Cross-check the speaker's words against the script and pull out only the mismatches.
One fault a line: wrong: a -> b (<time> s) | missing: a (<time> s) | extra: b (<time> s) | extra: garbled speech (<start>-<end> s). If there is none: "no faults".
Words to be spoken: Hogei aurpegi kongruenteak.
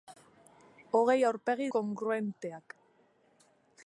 no faults